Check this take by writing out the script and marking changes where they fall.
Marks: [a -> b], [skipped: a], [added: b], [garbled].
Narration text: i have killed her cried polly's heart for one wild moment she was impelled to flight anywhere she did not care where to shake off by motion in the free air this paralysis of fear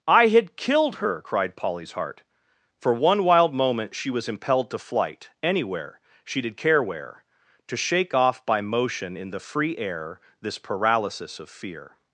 i [have -> had] killed her cried polly's heart for one wild moment she was impelled to flight anywhere she did [skipped: not] care where to shake off by motion in the free air this paralysis of fear